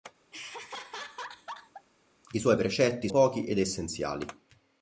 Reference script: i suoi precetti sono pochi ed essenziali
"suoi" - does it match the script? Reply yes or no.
yes